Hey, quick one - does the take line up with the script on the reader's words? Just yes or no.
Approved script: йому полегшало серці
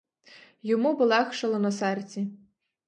no